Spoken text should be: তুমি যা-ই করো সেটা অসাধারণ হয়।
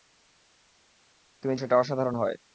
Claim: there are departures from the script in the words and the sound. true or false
true